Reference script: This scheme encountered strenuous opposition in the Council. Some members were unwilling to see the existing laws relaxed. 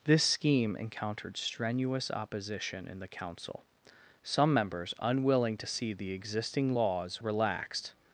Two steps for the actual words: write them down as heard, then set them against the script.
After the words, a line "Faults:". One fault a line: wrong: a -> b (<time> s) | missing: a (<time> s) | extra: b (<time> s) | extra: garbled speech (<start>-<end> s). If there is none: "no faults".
This scheme encountered strenuous opposition in the Council. Some members unwilling to see the existing laws relaxed.
Faults:
missing: were (4.9 s)